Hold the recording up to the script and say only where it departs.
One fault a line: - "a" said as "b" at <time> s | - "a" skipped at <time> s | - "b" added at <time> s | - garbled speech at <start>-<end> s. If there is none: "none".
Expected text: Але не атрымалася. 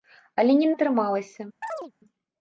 none